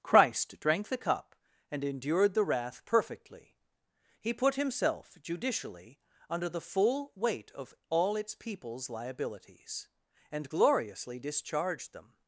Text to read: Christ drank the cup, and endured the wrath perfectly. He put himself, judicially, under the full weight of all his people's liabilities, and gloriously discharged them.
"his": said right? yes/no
no